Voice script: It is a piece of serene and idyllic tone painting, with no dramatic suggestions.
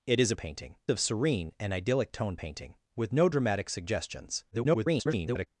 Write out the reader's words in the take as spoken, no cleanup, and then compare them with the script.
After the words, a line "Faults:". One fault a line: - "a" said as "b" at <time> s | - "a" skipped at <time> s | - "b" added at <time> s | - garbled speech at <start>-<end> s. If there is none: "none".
It is a painting of serene and idyllic tone painting, with no dramatic suggestions. [garbled]
Faults:
- "piece" said as "painting" at 0.4 s
- garbled speech at 4.5-5.5 s